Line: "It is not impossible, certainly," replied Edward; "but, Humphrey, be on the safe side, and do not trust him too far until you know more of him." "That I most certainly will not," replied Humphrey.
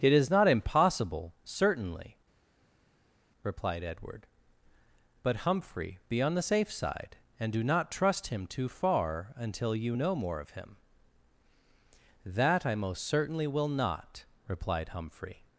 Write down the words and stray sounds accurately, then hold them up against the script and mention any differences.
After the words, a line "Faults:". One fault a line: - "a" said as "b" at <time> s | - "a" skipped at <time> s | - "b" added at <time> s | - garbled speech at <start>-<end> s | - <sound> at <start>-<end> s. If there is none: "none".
"It is not impossible, certainly," replied Edward; "but, Humphrey, be on the safe side, and do not trust him too far until you know more of him." "That I most certainly will not," replied Humphrey.
Faults:
none